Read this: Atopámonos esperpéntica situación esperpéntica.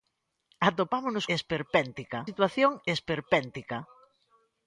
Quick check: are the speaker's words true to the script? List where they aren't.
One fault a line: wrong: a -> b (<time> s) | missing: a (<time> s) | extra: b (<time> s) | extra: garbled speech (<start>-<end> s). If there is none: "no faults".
no faults